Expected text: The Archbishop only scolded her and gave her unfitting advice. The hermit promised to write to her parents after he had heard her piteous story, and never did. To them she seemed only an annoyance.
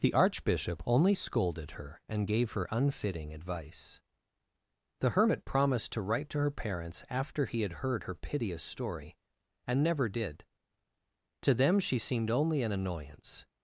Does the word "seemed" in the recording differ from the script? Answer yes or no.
no